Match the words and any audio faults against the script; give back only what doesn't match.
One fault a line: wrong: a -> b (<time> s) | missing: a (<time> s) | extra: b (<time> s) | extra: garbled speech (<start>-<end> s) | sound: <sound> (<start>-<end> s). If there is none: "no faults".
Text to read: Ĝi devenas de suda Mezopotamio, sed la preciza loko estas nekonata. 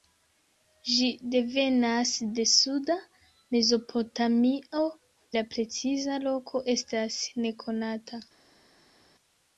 missing: sed (4.8 s)